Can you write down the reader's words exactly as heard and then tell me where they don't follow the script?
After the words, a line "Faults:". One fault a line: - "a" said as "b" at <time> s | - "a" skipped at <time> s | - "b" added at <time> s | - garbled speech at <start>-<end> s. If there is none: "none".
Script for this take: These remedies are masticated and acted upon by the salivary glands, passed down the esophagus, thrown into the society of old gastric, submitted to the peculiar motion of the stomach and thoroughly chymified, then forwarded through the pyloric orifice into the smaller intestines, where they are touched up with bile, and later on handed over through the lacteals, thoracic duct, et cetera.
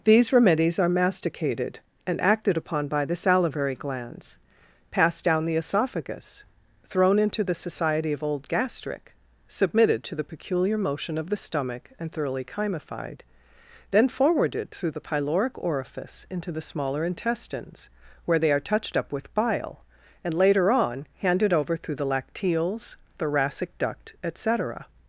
These remedies are masticated and acted upon by the salivary glands, passed down the esophagus, thrown into the society of old gastric, submitted to the peculiar motion of the stomach and thoroughly chymified, then forwarded through the pyloric orifice into the smaller intestines, where they are touched up with bile, and later on handed over through the lacteals, thoracic duct, et cetera.
Faults:
none